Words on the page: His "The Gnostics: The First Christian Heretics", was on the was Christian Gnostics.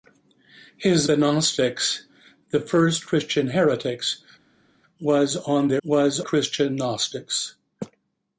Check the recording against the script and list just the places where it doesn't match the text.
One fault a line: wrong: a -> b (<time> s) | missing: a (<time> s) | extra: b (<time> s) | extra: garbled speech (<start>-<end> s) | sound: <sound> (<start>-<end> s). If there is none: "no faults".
no faults